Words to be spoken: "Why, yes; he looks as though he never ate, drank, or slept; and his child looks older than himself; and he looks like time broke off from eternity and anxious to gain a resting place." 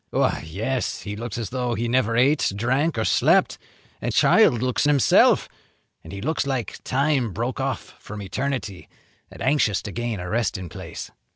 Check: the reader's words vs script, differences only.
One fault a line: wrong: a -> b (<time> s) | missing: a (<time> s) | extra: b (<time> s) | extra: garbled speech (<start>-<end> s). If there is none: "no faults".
missing: his (4.1 s)
missing: older than (4.9 s)